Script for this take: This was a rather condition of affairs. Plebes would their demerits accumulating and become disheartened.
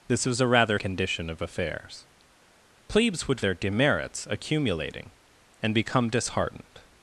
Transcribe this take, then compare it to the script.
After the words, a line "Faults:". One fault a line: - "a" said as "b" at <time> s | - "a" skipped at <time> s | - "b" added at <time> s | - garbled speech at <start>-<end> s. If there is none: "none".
This was a rather condition of affairs. Plebes would their demerits accumulating and become disheartened.
Faults:
none